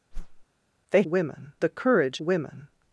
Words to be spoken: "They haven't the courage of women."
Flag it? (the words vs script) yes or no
yes